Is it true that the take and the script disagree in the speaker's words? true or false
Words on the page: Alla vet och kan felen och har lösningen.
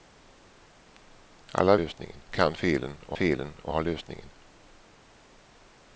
true